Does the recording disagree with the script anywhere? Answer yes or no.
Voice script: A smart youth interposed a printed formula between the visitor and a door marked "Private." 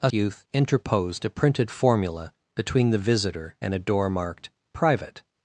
yes